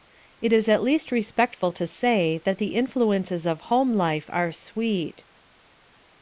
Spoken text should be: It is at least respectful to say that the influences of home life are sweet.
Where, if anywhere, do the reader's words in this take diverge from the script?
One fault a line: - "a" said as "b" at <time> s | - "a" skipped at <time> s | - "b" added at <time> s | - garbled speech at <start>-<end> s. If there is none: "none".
none